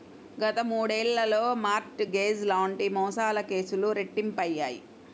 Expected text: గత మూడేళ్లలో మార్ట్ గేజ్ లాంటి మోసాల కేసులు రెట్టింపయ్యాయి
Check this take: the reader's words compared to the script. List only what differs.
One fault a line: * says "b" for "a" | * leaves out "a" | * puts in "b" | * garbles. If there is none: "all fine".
all fine